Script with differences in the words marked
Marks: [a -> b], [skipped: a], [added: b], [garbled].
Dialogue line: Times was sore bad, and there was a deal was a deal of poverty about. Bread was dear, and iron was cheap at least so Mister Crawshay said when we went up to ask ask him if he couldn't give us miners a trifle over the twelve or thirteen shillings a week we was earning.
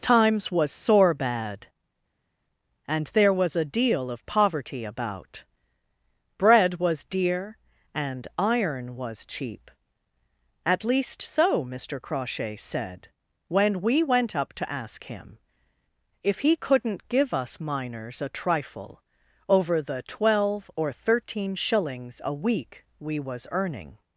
Times was sore bad, and there was a deal [skipped: was a deal] of poverty about. Bread was dear, and iron was cheap at least so Mister Crawshay said when we went up to ask [skipped: ask] him if he couldn't give us miners a trifle over the twelve or thirteen shillings a week we was earning.